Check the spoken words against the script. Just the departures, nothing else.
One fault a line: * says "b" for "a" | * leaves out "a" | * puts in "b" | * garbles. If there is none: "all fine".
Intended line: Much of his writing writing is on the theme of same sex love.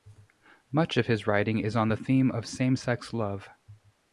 * leaves out "writing"